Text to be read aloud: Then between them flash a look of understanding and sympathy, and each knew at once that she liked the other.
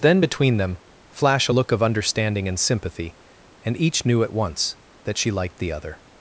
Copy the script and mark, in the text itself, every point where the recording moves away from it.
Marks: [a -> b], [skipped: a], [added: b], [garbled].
Then between them flash a look of understanding and sympathy, and each knew at once that she liked the other.